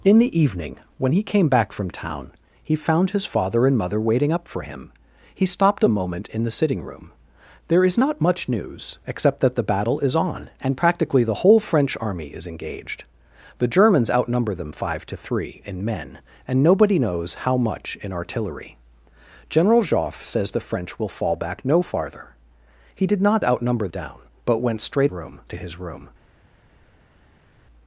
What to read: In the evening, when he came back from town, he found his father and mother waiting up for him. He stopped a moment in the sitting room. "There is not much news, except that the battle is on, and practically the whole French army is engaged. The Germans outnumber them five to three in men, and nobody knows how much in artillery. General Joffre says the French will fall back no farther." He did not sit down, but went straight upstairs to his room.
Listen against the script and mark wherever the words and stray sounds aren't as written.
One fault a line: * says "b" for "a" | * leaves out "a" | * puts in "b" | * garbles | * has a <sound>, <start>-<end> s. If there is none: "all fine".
* says "outnumber" for "sit"
* says "room" for "upstairs"